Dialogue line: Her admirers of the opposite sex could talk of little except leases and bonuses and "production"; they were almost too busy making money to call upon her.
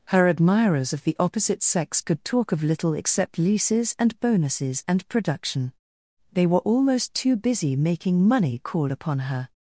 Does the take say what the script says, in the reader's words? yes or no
no